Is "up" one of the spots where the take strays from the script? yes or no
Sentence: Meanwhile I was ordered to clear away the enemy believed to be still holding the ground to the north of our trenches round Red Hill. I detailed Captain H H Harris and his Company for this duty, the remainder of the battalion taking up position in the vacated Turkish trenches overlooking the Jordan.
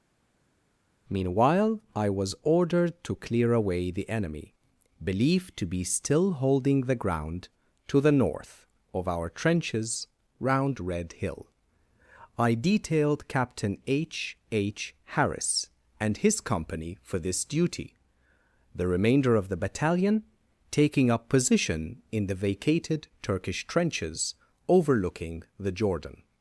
no